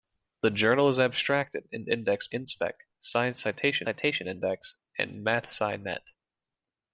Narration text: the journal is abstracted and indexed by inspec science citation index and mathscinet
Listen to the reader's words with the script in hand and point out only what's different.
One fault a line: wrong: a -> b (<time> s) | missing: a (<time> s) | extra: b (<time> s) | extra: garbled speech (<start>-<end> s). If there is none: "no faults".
missing: by (2.3 s)
extra: citation (3.8 s)